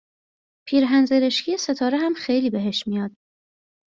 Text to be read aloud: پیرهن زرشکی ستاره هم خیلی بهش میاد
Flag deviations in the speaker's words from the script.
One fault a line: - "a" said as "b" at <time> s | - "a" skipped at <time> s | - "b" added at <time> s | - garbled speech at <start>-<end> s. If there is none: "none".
none